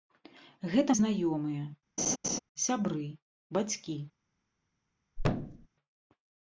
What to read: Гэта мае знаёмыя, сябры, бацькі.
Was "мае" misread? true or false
true